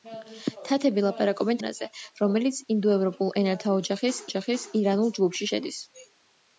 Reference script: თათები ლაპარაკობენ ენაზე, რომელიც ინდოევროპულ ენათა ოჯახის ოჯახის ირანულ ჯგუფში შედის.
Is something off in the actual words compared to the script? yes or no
no